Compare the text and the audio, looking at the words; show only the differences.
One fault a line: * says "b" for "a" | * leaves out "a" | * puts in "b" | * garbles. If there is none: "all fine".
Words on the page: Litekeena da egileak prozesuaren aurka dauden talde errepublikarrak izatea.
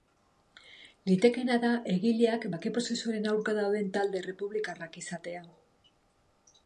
* puts in "bake"